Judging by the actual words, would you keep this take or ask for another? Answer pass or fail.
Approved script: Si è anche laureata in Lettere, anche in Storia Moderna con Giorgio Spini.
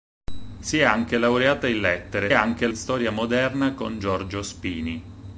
pass